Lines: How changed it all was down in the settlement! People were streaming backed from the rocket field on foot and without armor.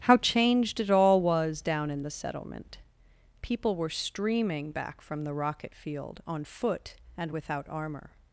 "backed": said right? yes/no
no